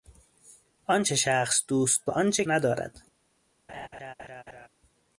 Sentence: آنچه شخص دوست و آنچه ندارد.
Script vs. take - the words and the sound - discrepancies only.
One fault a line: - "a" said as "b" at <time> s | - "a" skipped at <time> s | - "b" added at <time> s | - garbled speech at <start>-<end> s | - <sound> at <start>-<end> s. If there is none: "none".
- laugh at 3.7-4.7 s